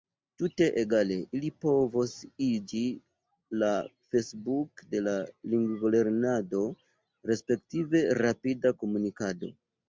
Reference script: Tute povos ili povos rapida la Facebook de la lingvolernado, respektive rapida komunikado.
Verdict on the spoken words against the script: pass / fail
fail